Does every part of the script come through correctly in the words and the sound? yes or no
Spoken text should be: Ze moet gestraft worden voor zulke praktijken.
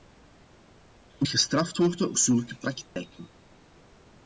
no